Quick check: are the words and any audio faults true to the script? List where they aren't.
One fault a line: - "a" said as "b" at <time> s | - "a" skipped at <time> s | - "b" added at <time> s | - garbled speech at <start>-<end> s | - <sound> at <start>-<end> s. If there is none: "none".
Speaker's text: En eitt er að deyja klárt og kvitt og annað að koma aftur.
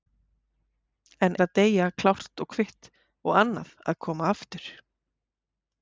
- "eitt" skipped at 1.4 s